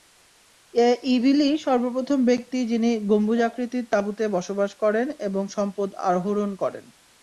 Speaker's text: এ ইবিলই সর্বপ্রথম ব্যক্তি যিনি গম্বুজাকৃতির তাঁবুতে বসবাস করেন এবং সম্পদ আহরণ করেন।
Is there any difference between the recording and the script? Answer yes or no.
no